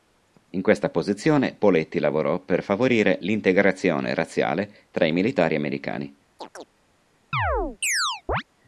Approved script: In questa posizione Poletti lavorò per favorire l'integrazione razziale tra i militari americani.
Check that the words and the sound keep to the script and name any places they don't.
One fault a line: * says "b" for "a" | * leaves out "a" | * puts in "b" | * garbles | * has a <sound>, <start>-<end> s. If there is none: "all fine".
* has a chirp, 6.4-6.7 s
* has a chirp, 7.3-8.4 s